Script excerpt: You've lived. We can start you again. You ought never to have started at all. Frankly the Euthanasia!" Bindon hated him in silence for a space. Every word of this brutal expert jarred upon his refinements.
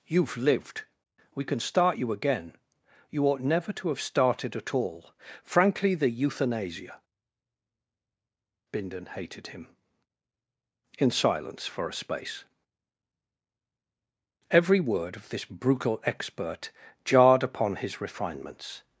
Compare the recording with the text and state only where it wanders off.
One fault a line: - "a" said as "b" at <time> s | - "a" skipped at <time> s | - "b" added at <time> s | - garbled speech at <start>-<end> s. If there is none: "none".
none